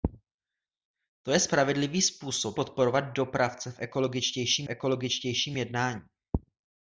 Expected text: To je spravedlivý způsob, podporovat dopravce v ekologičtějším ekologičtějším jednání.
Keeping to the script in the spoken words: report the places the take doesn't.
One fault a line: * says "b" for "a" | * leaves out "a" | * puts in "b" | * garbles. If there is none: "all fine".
all fine